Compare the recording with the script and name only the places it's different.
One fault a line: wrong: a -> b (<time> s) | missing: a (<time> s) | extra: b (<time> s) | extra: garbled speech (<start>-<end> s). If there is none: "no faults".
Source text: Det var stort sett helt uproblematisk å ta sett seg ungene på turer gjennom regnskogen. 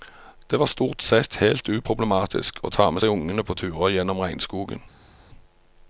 wrong: sett -> med (2.9 s)